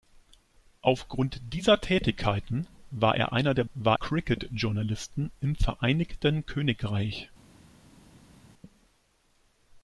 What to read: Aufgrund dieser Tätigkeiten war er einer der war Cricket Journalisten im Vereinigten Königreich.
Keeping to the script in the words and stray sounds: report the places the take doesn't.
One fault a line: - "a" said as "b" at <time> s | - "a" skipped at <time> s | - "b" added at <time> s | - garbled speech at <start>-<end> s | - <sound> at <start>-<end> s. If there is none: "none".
none